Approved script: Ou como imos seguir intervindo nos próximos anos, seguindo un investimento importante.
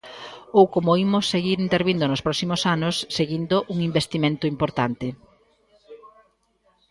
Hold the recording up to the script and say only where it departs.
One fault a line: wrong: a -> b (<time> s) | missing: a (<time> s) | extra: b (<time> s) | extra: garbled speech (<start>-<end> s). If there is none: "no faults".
no faults